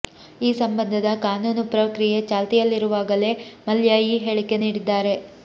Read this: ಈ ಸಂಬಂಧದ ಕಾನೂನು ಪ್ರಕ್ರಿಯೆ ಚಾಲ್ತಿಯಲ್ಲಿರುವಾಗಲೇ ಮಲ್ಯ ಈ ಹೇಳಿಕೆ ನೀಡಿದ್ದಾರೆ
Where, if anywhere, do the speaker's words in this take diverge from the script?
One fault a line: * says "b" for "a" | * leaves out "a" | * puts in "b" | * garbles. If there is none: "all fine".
all fine